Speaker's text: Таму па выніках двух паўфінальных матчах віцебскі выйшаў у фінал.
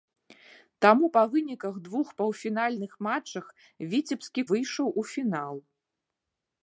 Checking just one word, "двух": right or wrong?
right